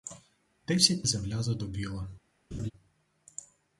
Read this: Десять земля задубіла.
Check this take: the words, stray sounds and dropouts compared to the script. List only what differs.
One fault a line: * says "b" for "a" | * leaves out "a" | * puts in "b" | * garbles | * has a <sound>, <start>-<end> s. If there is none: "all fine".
* has a laugh, 2.5-2.7 s